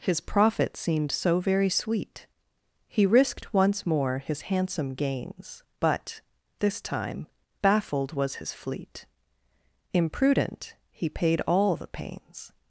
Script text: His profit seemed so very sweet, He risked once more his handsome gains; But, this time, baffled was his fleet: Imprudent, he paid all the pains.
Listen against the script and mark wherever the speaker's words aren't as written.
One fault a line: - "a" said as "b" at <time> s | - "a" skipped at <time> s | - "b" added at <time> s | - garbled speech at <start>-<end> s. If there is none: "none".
none